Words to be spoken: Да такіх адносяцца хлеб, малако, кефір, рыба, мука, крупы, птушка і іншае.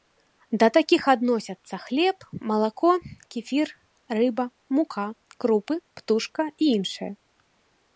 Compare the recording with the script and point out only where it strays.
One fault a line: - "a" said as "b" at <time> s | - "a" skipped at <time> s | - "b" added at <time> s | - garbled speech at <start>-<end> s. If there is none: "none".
none